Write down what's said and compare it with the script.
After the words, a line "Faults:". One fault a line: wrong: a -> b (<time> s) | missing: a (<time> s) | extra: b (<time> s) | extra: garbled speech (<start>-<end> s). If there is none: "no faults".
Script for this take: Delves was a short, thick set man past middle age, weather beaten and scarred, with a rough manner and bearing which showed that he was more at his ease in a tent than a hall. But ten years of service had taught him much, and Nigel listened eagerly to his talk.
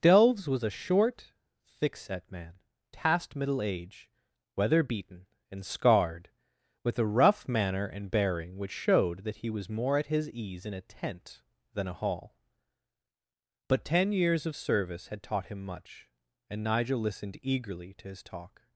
Delves was a short, thick set man past middle age, weather beaten and scarred, with a rough manner and bearing which showed that he was more at his ease in a tent than a hall. But ten years of service had taught him much, and Nigel listened eagerly to his talk.
Faults:
no faults